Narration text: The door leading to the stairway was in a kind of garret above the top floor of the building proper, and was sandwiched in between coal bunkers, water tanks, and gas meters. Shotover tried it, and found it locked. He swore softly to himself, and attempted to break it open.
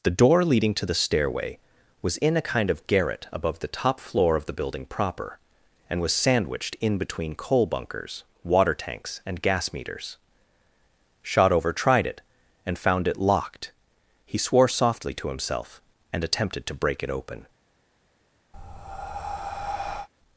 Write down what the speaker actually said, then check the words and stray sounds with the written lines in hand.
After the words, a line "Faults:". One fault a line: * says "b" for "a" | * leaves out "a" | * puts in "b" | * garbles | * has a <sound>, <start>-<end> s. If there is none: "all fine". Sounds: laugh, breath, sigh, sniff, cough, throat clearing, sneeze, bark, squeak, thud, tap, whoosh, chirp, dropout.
The door leading to the stairway was in a kind of garret above the top floor of the building proper, and was sandwiched in between coal bunkers, water tanks, and gas meters. Shotover tried it, and found it locked. He swore softly to himself, and attempted to break it open.
Faults:
* has a breath, 18.5-20.1 s